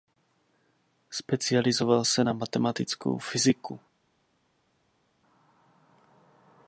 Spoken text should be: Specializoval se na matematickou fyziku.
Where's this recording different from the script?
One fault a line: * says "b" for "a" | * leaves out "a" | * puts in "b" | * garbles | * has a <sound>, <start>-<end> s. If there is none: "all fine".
all fine